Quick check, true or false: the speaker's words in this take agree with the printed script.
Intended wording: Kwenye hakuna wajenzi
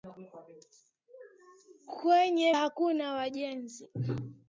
true